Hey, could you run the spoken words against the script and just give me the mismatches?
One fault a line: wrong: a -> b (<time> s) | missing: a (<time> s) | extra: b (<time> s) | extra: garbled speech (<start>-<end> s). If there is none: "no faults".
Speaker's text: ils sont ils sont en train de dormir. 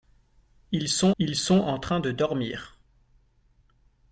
no faults